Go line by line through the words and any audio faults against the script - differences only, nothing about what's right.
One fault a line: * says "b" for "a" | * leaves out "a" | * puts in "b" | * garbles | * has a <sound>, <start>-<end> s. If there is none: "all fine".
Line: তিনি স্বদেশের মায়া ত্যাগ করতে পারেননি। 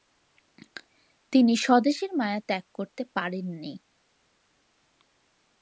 all fine